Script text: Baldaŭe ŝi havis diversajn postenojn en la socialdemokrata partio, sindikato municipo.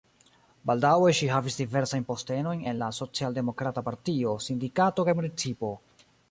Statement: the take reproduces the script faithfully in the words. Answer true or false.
false